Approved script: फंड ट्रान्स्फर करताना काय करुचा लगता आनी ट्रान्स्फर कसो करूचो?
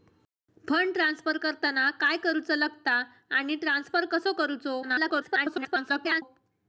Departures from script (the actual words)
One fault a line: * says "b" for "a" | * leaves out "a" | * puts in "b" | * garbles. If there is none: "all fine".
* garbles